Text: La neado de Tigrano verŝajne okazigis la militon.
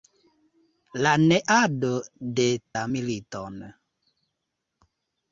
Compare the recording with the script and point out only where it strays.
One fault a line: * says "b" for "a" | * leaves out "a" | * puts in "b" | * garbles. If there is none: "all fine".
* leaves out "Tigrano verŝajne okazigis"